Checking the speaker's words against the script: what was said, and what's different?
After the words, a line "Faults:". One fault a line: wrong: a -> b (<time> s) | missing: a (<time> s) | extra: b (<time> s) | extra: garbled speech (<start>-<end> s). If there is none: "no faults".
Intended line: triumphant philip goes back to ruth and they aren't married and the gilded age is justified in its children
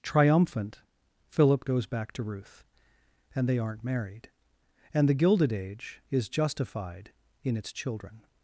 triumphant philip goes back to ruth and they aren't married and the gilded age is justified in its children
Faults:
no faults